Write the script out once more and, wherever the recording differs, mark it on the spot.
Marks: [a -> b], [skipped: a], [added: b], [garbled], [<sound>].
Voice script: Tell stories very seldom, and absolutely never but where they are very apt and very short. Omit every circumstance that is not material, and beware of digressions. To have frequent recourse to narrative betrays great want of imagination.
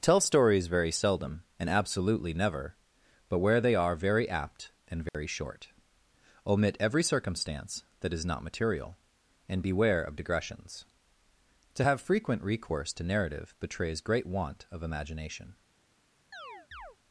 Tell stories very seldom, and absolutely never but where they are very apt and very [dropout] short. Omit every circumstance that is not material, and beware of digressions. To have frequent recourse to narrative betrays great want of imagination. [chirp]